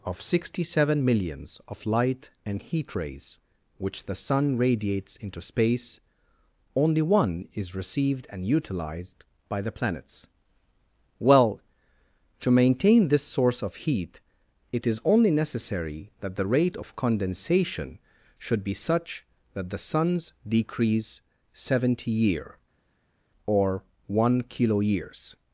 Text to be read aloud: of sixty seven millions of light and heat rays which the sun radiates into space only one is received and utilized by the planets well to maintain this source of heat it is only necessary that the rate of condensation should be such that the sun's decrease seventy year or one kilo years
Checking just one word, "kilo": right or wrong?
right